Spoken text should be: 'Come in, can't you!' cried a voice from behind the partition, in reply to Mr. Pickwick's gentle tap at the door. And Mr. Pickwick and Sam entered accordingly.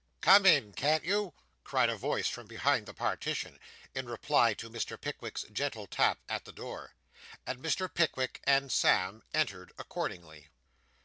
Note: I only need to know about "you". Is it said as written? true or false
true